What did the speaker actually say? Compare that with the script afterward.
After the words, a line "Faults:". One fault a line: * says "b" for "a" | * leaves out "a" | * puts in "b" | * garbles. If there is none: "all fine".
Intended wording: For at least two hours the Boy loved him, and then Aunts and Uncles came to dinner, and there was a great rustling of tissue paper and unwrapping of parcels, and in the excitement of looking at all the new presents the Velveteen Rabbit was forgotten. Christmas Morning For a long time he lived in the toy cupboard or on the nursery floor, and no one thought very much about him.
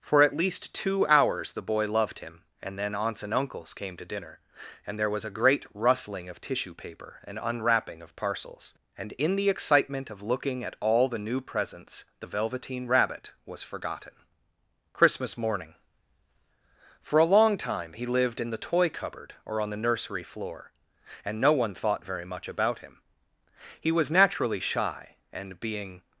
For at least two hours the Boy loved him, and then Aunts and Uncles came to dinner, and there was a great rustling of tissue paper and unwrapping of parcels, and in the excitement of looking at all the new presents the Velveteen Rabbit was forgotten. Christmas Morning For a long time he lived in the toy cupboard or on the nursery floor, and no one thought very much about him. He was naturally shy, and being
Faults:
* puts in "He was naturally shy and being"